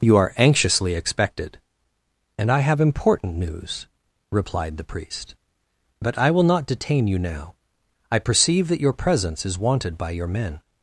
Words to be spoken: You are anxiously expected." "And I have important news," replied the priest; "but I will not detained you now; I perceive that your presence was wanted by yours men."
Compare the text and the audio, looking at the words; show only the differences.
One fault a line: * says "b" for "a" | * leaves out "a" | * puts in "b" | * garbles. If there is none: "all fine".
* says "detain" for "detained"
* says "is" for "was"
* says "your" for "yours"